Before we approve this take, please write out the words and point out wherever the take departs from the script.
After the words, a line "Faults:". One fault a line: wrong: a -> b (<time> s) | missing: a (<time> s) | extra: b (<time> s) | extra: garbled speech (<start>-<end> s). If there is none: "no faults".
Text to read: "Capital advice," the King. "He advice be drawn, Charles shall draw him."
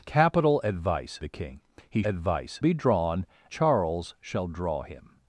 "Capital advice," the King. "He advice be drawn, Charles shall draw him."
Faults:
no faults